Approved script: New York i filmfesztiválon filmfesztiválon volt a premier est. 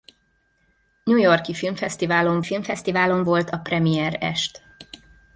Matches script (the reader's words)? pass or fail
pass